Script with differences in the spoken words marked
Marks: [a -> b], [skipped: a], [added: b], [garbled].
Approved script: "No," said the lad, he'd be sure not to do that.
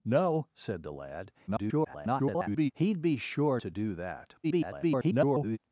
"No," said the lad, [garbled] he'd be sure [skipped: not] to do that. [garbled]